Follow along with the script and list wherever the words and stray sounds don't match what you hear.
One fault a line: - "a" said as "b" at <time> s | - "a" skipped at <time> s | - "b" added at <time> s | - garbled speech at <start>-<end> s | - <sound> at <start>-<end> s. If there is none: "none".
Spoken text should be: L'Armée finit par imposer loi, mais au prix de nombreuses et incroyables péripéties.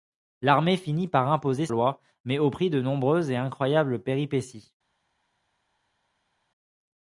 none